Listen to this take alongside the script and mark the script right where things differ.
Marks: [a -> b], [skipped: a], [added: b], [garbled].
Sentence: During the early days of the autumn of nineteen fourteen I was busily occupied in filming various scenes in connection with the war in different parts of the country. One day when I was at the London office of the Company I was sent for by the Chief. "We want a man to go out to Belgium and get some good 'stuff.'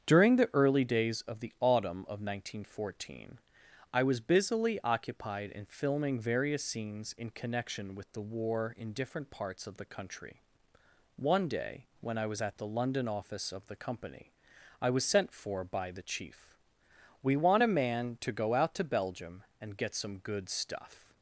During the early days of the autumn of nineteen fourteen I was busily occupied in filming various scenes in connection with the war in different parts of the country. One day when I was at the London office of the Company I was sent for by the Chief. "We want a man to go out to Belgium and get some good 'stuff.'